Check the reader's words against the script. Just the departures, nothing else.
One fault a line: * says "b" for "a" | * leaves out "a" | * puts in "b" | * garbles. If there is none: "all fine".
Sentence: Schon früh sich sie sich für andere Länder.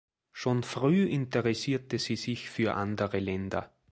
* says "interessierte" for "sich"